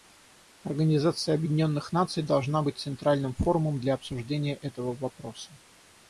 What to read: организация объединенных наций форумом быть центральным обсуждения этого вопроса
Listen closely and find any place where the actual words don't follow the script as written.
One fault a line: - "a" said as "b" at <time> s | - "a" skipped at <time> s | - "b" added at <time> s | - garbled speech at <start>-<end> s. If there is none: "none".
- "форумом" said as "должна" at 2.2 s
- "форумом для" added at 3.3 s